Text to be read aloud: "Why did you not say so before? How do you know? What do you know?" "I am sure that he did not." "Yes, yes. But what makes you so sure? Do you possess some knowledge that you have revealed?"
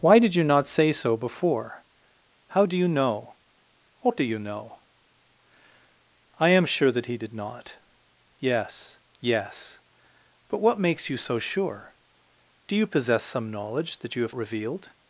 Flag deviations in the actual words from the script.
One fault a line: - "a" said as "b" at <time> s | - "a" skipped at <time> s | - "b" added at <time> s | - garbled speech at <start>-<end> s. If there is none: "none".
none